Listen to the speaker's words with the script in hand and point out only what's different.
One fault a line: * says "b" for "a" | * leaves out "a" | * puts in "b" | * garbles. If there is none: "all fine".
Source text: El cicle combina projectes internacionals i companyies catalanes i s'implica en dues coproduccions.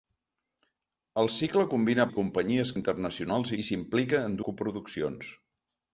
* leaves out "projectes internacionals"
* says "internacionals" for "catalanes"
* leaves out "dues"